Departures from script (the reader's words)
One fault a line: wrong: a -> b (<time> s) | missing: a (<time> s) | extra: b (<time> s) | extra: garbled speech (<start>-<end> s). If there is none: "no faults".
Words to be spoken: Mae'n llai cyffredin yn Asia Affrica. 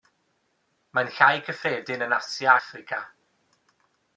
no faults